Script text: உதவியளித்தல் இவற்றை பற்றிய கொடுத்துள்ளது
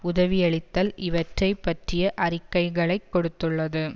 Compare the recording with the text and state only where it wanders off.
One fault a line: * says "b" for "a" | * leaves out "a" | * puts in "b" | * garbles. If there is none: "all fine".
* puts in "அறிக்கைகளைக்"